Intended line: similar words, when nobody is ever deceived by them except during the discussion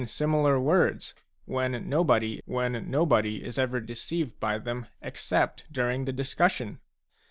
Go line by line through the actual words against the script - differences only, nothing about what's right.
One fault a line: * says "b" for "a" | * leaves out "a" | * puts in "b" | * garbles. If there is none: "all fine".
* puts in "when nobody"